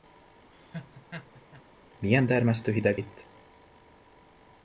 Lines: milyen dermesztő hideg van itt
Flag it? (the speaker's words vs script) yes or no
yes